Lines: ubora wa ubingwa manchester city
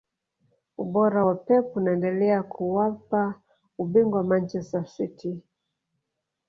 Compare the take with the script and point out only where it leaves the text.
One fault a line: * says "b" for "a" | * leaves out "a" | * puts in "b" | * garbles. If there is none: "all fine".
* puts in "pep unaendelea kuwapa"